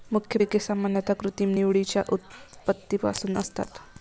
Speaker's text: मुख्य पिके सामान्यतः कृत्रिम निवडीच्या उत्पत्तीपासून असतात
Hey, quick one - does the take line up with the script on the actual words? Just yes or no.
yes